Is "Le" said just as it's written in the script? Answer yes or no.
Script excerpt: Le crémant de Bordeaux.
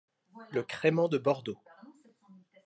yes